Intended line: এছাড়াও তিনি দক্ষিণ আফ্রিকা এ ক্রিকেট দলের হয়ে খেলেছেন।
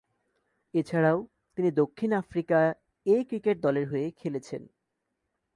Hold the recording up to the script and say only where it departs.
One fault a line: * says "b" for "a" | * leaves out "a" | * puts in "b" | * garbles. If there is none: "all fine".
all fine